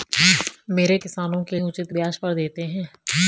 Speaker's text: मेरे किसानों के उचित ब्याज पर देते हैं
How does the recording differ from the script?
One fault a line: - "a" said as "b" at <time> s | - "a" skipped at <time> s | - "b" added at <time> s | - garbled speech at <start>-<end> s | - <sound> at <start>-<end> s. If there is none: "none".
none